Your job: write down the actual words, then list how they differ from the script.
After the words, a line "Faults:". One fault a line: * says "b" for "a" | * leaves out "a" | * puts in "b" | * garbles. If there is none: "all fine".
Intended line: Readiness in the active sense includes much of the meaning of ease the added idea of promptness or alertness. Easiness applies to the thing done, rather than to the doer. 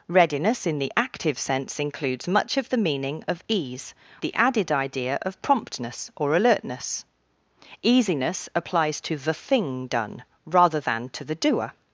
Readiness in the active sense includes much of the meaning of ease the added idea of promptness or alertness. Easiness applies to the thing done, rather than to the doer.
Faults:
all fine